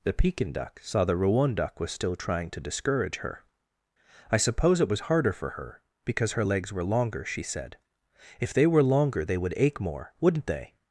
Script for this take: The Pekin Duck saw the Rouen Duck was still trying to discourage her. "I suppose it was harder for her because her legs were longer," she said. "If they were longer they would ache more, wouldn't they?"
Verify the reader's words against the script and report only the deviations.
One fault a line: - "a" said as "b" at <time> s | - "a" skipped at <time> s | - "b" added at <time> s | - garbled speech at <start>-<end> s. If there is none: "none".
none